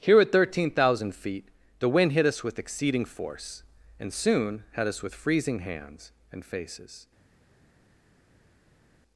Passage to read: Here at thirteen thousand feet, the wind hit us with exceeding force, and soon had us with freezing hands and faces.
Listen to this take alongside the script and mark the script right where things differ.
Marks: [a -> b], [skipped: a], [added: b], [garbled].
Here at thirteen thousand feet, the wind hit us with exceeding force, and soon had us with freezing hands and faces.